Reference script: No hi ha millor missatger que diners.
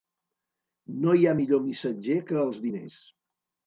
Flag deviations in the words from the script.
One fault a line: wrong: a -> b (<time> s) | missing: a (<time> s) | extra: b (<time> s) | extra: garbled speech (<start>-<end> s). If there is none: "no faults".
extra: els (2.5 s)